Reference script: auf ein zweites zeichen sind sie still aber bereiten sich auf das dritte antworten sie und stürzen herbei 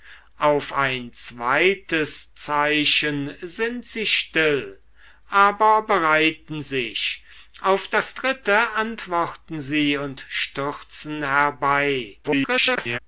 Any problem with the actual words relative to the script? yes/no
yes